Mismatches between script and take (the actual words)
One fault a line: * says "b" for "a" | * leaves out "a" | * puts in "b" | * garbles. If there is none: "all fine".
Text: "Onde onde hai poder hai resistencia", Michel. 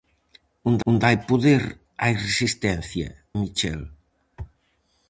all fine